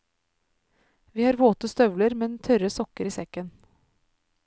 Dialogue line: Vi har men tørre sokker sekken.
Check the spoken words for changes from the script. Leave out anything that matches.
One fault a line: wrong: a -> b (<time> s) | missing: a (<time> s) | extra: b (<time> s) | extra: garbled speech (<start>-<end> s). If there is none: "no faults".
extra: våte støvler (1.4 s)
extra: i (3.0 s)